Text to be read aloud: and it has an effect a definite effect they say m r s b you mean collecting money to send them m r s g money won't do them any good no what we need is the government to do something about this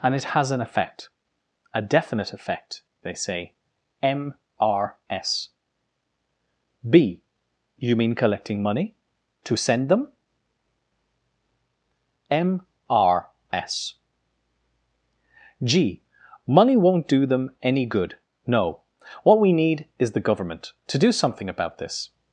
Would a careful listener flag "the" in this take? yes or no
no